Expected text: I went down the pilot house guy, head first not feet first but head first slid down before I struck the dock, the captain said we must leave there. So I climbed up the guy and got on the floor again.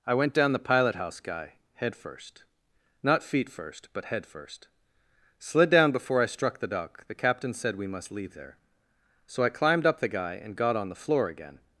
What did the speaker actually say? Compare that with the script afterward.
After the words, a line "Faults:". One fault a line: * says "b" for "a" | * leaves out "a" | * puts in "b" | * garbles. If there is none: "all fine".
I went down the pilot house guy, head first not feet first but head first slid down before I struck the dock, the captain said we must leave there. So I climbed up the guy and got on the floor again.
Faults:
all fine